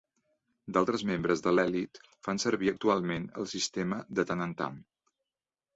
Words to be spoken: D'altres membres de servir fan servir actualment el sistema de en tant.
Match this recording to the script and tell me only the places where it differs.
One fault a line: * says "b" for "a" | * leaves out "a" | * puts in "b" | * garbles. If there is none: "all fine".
* says "l'elit" for "servir"
* puts in "tant"